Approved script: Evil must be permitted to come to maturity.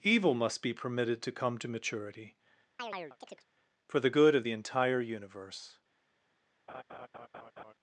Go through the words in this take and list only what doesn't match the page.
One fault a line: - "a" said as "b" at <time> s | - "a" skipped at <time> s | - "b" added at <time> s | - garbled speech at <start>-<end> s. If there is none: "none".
- "For the good of the entire universe" added at 3.9 s